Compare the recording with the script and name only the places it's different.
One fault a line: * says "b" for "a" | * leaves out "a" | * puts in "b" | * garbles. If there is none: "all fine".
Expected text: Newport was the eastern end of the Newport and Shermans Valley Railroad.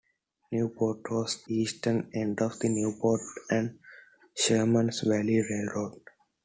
* leaves out "the"